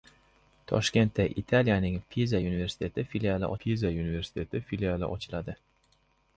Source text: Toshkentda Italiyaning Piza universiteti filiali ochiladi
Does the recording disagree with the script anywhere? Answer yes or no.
yes